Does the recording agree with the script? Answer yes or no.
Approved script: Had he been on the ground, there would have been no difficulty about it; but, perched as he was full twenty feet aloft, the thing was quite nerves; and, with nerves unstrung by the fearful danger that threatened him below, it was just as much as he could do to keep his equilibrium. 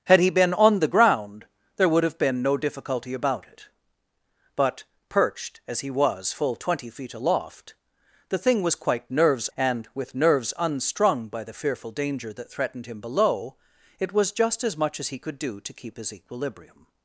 yes